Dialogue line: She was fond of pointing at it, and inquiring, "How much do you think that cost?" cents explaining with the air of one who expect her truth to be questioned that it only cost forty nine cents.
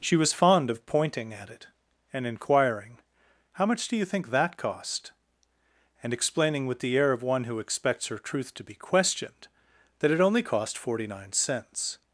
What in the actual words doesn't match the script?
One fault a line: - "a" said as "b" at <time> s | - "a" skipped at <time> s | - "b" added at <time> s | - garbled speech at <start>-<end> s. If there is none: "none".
- "cents" said as "and" at 6.0 s
- "expect" said as "expects" at 7.6 s